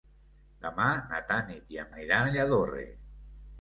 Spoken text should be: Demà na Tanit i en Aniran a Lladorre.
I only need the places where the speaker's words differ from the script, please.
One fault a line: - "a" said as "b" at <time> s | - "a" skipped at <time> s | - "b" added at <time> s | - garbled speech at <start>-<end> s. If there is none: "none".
none